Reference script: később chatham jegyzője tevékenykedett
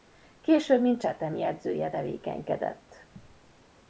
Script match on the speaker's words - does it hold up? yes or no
no